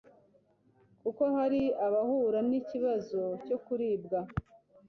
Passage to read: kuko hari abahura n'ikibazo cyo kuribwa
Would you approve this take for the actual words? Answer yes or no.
yes